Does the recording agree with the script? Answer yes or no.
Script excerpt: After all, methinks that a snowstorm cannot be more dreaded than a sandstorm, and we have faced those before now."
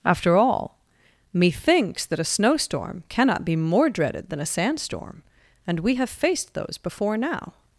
yes